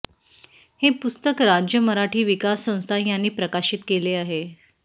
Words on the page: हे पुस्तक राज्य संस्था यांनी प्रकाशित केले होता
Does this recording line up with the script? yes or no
no